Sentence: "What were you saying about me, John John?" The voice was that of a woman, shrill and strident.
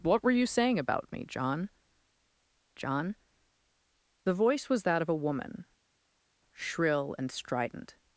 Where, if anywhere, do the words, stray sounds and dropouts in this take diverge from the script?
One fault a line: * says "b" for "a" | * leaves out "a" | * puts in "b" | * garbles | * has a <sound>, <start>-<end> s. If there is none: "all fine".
all fine